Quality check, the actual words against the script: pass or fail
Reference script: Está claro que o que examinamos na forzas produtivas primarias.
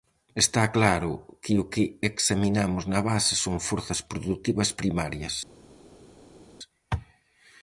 fail